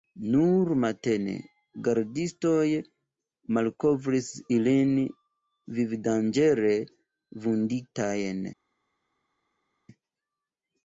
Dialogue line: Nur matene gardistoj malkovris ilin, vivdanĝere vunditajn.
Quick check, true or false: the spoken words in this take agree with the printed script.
true